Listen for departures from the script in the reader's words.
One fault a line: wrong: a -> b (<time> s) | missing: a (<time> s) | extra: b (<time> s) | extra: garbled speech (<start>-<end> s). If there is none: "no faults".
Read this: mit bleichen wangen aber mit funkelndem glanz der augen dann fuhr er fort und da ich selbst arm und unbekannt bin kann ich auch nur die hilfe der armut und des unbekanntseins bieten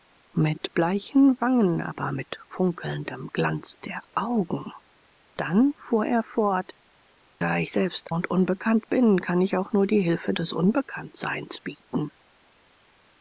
missing: und (6.7 s)
missing: arm (8.1 s)
missing: der armut und (10.3 s)